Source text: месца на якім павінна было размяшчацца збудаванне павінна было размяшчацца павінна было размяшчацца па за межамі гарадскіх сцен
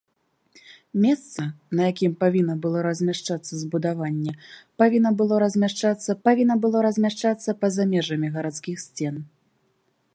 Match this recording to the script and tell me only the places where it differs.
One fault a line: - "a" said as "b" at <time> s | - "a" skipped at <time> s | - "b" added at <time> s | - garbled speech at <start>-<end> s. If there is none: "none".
none